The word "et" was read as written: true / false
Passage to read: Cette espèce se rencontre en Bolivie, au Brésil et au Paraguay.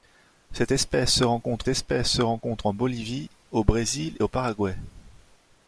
false